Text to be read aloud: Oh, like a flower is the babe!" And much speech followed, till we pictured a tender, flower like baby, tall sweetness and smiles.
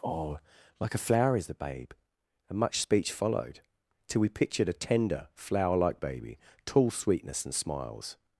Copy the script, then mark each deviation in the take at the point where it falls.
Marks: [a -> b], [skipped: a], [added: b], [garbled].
Oh, like a flower is the babe!" And much speech followed, till we pictured a tender, flower like baby, tall sweetness and smiles.